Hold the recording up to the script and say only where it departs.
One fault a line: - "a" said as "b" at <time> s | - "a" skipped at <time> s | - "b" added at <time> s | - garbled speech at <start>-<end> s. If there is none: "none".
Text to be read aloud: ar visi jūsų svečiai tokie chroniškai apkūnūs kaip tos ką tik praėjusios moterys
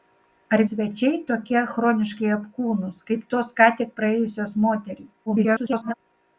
- "visi jūsų" skipped at 0.6 s
- garbled speech at 5.3-5.9 s